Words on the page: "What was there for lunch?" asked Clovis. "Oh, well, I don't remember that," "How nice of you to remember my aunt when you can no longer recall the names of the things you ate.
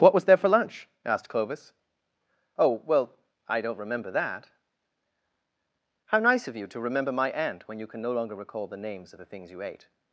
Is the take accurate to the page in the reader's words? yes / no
yes